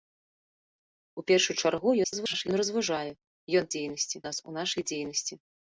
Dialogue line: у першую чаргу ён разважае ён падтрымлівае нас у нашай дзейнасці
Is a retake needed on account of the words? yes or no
yes